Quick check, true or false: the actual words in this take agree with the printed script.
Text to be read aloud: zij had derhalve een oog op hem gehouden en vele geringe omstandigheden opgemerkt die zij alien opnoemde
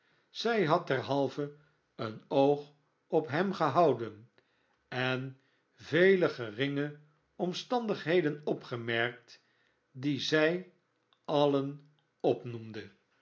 true